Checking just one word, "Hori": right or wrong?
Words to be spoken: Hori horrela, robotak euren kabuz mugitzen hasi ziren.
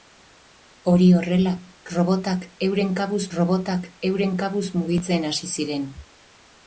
right